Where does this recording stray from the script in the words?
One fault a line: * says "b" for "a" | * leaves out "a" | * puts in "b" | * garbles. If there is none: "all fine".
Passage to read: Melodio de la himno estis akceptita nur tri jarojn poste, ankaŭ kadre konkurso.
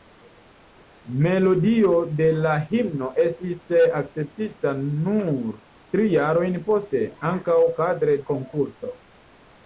all fine